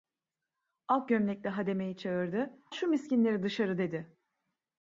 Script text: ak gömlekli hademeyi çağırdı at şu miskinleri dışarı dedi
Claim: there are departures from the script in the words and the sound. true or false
true